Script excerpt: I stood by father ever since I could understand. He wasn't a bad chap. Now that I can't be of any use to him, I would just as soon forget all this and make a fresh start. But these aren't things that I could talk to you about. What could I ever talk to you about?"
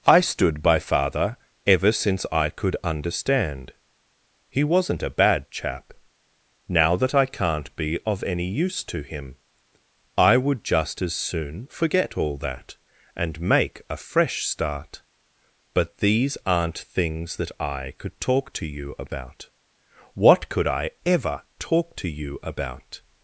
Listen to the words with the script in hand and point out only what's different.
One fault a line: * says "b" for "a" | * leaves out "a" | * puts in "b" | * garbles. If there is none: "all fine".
* says "that" for "this"